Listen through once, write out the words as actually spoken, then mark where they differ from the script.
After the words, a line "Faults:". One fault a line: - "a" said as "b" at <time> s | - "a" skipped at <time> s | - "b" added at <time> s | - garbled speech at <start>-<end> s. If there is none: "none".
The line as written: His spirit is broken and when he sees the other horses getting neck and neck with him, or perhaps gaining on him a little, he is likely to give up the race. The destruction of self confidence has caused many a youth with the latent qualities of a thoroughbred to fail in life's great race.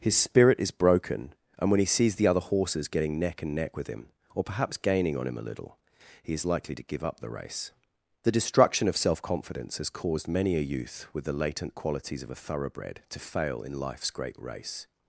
His spirit is broken and when he sees the other horses getting neck and neck with him, or perhaps gaining on him a little, he is likely to give up the race. The destruction of self confidence has caused many a youth with the latent qualities of a thoroughbred to fail in life's great race.
Faults:
none